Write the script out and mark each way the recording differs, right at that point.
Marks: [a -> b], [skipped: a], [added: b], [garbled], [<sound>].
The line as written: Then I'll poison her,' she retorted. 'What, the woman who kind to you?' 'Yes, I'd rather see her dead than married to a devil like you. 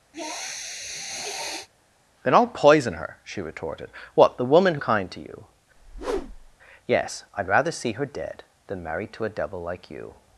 [sniff] Then I'll poison her,' she retorted. 'What, the woman who kind to you?' [whoosh] 'Yes, I'd rather see her dead than married to a devil like you.